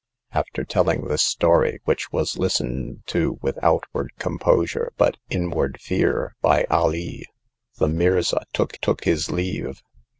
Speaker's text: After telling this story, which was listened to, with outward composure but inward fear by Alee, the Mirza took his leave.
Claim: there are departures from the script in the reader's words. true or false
true